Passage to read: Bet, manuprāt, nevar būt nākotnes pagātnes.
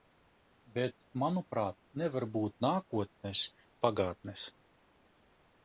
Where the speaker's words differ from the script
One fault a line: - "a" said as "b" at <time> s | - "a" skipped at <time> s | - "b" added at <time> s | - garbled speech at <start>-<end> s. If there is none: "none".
none